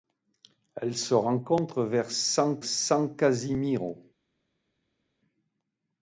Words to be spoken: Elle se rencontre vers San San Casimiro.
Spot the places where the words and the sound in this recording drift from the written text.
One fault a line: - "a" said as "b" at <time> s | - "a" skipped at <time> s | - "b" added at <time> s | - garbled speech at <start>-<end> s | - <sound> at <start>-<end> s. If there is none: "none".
none